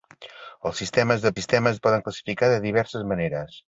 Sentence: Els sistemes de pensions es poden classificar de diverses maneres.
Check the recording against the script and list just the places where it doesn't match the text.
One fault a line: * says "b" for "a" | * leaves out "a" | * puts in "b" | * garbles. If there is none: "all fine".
* says "sistemes" for "pensions"